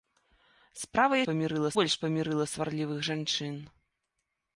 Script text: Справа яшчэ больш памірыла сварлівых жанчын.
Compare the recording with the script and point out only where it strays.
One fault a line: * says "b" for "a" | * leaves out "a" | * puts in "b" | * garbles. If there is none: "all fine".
* says "памірыла" for "яшчэ"